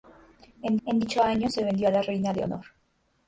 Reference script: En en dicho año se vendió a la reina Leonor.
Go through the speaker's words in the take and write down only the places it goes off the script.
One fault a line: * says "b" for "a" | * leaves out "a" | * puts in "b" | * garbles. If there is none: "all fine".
all fine